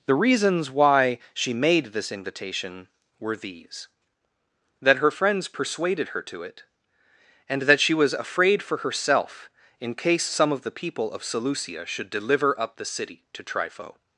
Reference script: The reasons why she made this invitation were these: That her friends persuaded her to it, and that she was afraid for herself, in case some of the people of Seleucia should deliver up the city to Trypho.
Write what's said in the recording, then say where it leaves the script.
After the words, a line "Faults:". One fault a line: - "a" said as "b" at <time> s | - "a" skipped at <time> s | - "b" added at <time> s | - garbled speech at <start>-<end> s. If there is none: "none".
The reasons why she made this invitation were these: That her friends persuaded her to it, and that she was afraid for herself, in case some of the people of Seleucia should deliver up the city to Trypho.
Faults:
none